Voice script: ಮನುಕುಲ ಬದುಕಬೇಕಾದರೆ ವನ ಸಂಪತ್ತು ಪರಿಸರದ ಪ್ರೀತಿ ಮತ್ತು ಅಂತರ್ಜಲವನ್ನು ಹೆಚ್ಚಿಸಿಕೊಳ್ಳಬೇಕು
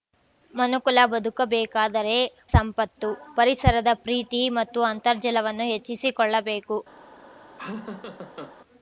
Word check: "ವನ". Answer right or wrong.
wrong